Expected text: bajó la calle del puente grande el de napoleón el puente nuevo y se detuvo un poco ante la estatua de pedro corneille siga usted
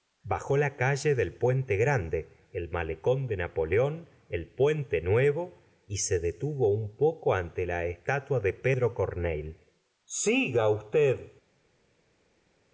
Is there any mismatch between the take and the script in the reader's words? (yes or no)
yes